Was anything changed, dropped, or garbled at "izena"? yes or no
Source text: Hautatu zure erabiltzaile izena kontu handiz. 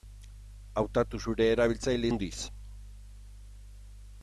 yes